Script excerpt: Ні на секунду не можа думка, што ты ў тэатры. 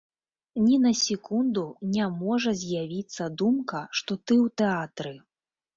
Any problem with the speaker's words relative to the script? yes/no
yes